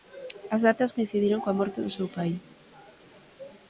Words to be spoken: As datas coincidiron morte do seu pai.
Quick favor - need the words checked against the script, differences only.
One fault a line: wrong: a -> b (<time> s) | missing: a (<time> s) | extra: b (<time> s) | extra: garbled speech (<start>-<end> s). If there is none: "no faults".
extra: coa (1.4 s)